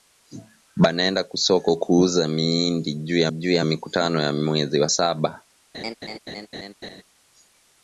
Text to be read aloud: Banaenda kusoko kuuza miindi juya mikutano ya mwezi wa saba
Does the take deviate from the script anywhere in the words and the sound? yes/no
yes